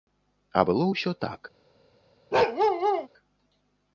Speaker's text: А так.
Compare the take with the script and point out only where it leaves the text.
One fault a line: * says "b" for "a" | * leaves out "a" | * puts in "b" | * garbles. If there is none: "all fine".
* puts in "было ўсё"